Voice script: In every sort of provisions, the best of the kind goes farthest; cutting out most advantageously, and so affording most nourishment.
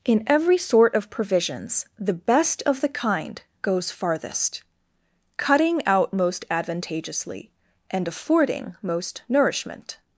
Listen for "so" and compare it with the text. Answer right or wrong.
wrong